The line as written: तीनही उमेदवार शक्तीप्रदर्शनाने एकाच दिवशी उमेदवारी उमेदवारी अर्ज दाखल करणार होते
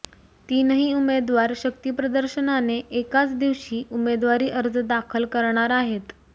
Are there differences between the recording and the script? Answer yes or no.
yes